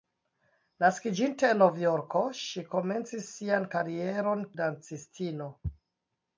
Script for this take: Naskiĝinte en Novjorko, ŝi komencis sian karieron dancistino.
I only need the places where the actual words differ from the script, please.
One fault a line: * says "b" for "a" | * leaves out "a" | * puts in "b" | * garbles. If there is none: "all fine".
all fine